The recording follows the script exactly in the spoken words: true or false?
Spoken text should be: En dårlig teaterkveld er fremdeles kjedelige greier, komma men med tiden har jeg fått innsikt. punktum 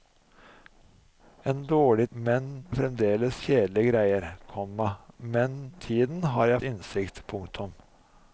false